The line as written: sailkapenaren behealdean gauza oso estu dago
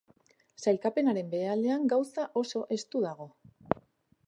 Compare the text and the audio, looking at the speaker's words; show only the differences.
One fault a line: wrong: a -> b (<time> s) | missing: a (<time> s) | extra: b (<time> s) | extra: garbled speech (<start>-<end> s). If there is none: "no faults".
no faults